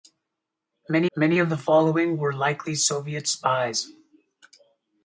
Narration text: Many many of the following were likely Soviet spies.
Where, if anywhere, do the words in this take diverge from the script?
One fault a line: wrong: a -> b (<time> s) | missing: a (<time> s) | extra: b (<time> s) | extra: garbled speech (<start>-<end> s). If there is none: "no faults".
no faults